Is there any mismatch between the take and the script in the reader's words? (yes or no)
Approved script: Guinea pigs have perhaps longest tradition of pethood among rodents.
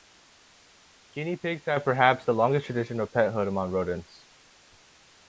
yes